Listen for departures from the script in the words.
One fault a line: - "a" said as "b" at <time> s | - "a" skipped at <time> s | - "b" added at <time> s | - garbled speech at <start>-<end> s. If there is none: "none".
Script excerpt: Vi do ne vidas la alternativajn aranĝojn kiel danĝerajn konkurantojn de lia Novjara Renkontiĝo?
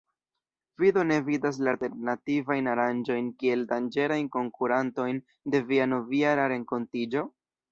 - "lia" said as "via" at 5.7 s